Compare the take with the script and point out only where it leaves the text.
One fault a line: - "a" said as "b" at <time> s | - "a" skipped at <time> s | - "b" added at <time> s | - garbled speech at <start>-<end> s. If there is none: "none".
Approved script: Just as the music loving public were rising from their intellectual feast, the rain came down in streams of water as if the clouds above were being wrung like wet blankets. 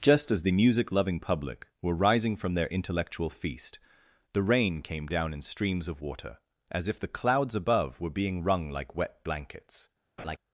none